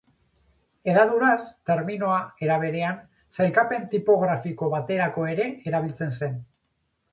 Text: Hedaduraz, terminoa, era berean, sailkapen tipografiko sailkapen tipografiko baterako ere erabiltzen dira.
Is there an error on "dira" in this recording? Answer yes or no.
yes